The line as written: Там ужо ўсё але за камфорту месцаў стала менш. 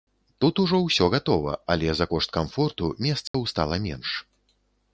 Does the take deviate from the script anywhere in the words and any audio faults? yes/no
yes